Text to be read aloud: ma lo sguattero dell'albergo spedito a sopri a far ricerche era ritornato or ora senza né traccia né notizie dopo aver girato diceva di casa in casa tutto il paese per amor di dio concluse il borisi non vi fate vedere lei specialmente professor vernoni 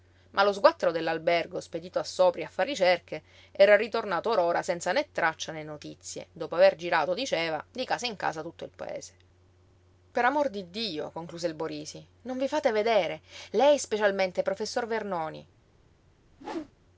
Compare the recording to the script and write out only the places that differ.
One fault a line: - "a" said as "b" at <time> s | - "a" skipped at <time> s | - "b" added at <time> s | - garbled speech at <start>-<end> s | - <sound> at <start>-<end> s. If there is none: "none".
- whoosh at 16.3-16.7 s